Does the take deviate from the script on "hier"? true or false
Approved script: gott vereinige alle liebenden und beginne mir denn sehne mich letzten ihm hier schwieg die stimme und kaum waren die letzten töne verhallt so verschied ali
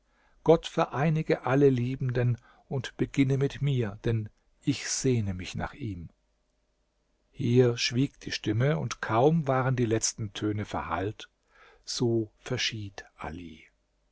false